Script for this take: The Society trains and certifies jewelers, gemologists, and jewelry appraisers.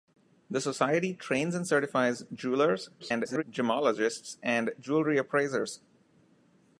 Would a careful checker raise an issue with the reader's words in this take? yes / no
yes